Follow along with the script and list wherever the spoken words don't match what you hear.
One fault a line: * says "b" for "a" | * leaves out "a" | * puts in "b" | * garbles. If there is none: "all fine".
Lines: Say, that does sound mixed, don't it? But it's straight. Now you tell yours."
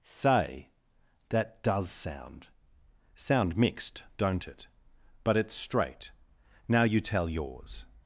* puts in "sound"